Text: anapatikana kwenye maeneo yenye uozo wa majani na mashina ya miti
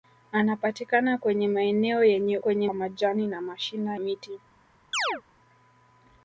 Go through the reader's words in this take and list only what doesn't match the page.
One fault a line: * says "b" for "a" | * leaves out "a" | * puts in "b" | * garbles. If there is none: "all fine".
* says "kwenye" for "uozo"
* leaves out "ya"